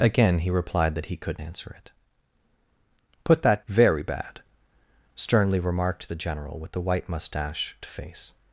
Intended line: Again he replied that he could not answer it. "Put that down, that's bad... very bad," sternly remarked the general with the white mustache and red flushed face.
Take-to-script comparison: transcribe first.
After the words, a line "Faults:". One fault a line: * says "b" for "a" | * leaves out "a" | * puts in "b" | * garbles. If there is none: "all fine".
Again he replied that he could answer it. "Put that... very bad," sternly remarked the general with the white mustache face.
Faults:
* leaves out "not"
* leaves out "down that's bad"
* leaves out "and red flushed"